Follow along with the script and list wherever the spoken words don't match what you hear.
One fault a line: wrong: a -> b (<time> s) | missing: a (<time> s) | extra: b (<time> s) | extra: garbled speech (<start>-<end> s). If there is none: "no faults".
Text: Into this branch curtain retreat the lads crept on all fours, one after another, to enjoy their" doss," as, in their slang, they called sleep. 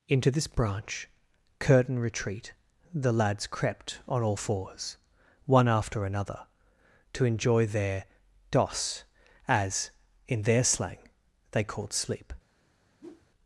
no faults